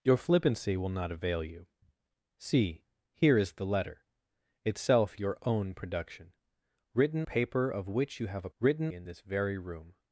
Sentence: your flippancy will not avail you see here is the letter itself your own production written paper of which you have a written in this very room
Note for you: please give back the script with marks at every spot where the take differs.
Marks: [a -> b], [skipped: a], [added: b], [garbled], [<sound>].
your flippancy will not avail you see here is the letter itself your own production written paper of which you have a written in this very room